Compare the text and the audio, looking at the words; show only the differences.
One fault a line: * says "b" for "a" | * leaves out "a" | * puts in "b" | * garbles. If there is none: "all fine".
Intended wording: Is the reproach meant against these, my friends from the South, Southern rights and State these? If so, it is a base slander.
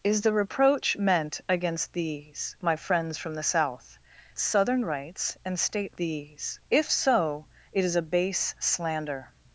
all fine